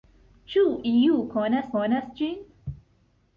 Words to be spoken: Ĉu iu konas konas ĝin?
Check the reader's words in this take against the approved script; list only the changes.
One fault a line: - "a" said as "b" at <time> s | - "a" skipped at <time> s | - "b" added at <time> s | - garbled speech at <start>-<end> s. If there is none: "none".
none